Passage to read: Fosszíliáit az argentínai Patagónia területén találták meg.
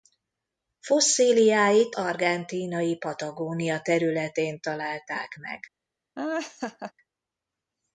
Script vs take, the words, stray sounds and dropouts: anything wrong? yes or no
yes